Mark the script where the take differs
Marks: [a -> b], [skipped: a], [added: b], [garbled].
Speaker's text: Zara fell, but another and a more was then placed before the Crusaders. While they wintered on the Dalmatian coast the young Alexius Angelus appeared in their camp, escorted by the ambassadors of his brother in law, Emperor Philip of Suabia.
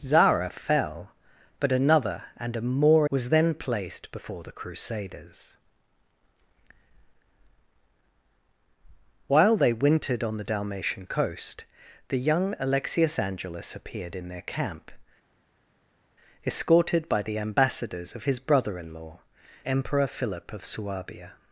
Zara fell, but another and a more was then placed before the Crusaders. While they wintered on the Dalmatian coast the young Alexius Angelus appeared in their camp, escorted by the ambassadors of his brother in law, Emperor Philip of Suabia.